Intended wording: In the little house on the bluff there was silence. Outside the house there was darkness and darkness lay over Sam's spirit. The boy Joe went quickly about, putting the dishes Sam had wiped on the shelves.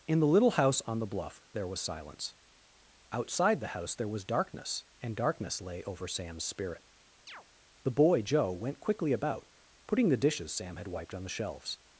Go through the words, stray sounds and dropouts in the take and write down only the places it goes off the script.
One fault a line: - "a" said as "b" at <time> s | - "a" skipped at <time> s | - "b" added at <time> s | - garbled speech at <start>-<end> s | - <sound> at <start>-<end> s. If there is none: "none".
- chirp at 7.3-7.4 s